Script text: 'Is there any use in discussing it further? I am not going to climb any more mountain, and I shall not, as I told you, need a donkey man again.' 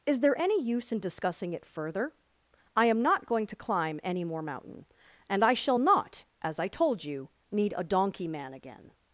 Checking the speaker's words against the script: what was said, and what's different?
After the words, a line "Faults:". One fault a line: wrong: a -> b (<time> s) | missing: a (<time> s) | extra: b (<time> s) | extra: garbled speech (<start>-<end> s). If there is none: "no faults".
'Is there any use in discussing it further? I am not going to climb any more mountain, and I shall not, as I told you, need a donkey man again.'
Faults:
no faults